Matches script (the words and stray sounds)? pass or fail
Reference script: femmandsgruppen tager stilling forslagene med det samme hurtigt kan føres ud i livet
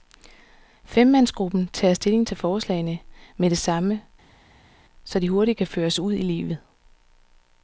fail